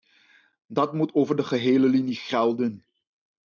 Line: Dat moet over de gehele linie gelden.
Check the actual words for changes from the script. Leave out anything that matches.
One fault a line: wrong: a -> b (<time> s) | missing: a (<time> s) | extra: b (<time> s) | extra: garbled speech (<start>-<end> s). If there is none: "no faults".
no faults